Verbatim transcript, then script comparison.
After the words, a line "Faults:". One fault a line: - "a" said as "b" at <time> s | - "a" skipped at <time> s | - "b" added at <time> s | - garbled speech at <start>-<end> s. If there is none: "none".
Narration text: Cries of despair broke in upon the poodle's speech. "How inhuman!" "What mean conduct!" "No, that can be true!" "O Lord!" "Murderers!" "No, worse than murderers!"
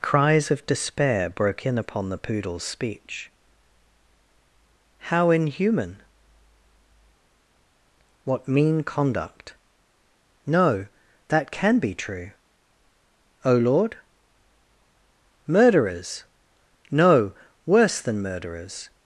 Cries of despair broke in upon the poodle's speech. "How inhuman!" "What mean conduct!" "No, that can be true!" "O Lord!" "Murderers!" "No, worse than murderers!"
Faults:
none